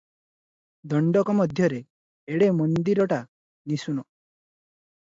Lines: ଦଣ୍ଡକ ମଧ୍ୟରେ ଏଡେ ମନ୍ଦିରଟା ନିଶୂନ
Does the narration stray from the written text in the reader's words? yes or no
no